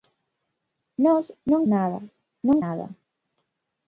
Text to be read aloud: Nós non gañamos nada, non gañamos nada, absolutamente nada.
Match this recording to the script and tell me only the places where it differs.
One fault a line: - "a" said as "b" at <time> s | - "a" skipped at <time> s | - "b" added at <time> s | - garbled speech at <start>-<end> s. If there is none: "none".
- "gañamos" skipped at 1.6 s
- "gañamos nada absolutamente" skipped at 2.6 s